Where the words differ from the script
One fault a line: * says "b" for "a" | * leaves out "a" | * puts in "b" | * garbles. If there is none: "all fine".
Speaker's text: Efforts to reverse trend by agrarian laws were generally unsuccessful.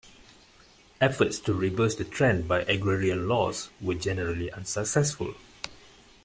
* puts in "the"